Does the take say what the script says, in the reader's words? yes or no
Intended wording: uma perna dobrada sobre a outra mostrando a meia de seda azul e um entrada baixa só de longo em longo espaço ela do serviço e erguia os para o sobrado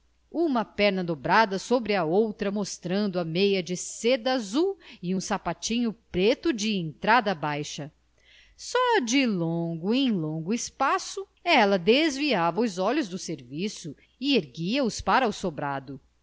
no